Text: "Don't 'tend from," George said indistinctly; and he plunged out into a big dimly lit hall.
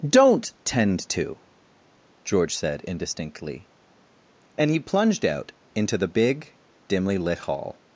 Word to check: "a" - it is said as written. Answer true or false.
false